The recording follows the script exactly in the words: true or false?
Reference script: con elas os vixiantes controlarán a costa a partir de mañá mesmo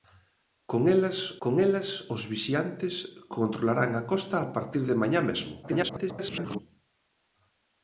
false